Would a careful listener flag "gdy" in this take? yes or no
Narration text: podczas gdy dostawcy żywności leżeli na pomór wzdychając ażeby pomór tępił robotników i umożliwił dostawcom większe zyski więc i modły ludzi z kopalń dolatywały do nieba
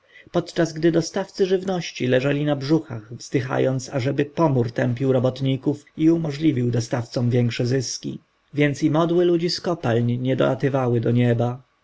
no